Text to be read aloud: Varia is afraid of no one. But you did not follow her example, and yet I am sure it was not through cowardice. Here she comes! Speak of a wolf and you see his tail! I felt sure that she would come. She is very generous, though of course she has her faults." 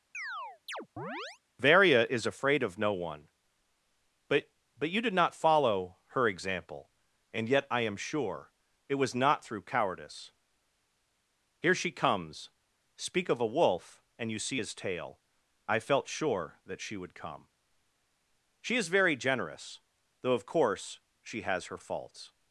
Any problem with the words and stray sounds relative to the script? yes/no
yes